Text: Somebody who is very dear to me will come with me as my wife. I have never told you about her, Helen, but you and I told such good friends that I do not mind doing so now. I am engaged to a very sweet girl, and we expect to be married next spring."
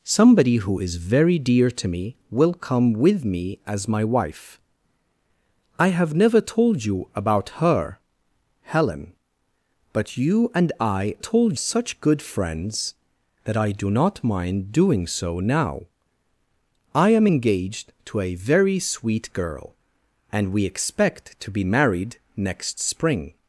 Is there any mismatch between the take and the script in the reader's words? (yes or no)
no